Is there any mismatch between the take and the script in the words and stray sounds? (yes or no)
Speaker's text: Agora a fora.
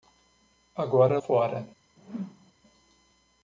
yes